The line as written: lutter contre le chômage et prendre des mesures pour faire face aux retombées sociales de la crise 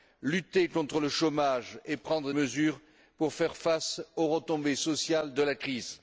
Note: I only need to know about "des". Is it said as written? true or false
false